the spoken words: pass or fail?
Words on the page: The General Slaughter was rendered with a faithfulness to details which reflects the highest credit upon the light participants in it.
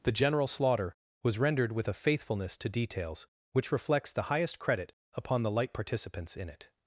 pass